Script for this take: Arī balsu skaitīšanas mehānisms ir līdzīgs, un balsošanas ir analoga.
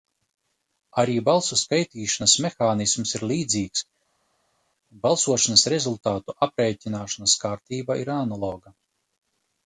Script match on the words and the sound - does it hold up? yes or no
no